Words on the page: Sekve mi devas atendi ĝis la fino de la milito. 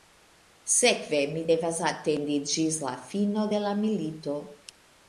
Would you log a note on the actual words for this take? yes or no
no